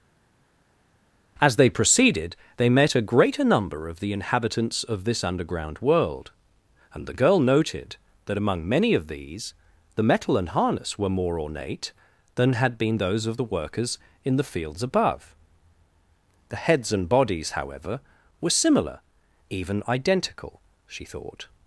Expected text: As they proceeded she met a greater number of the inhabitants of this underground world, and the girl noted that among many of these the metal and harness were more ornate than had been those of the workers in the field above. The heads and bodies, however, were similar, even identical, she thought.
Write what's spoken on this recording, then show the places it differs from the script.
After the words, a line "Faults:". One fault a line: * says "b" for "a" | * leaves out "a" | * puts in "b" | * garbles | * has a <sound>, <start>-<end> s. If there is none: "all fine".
As they proceeded they met a greater number of the inhabitants of this underground world, and the girl noted that among many of these the metal and harness were more ornate than had been those of the workers in the fields above. The heads and bodies, however, were similar, even identical, she thought.
Faults:
* says "they" for "she"
* says "fields" for "field"